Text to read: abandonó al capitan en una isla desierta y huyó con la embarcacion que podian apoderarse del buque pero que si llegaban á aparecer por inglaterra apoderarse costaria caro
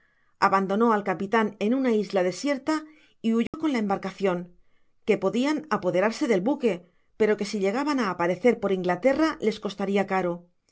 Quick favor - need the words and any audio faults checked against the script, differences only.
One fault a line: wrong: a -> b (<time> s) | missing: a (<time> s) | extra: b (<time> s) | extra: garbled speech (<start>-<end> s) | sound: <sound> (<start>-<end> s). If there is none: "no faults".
sound: dropout (3.5-3.5 s)
wrong: apoderarse -> les (9.4 s)